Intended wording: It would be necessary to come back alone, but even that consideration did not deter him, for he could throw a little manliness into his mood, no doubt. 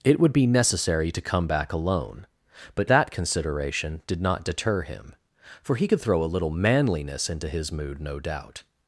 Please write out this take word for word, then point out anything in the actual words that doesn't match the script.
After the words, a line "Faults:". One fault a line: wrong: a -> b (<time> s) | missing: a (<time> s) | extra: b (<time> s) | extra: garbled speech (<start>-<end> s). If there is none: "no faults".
It would be necessary to come back alone, but that consideration did not deter him, for he could throw a little manliness into his mood, no doubt.
Faults:
missing: even (2.9 s)